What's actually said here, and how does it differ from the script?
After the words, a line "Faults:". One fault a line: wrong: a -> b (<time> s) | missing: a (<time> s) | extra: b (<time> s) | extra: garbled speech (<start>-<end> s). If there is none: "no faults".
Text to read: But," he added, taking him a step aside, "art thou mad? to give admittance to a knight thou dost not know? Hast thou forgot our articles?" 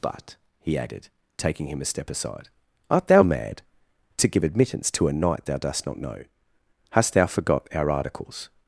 But," he added, taking him a step aside, "art thou mad? to give admittance to a knight thou dost not know? Hast thou forgot our articles?"
Faults:
no faults